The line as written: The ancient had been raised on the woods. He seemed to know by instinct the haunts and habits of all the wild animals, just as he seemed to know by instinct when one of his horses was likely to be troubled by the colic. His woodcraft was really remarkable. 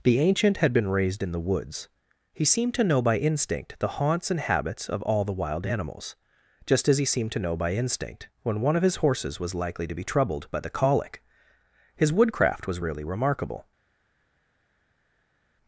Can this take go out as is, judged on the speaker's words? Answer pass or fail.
fail